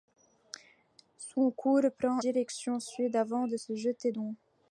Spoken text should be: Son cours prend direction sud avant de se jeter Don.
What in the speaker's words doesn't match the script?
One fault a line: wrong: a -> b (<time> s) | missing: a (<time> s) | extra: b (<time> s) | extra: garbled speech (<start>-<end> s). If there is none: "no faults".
no faults